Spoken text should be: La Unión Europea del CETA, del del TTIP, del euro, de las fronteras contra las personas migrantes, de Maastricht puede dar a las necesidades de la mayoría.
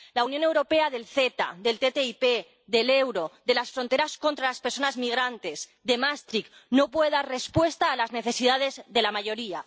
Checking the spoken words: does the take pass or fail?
fail